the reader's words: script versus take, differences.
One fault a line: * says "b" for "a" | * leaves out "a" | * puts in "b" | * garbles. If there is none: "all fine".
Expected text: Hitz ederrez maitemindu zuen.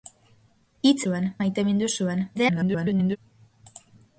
* says "zuen" for "ederrez"
* garbles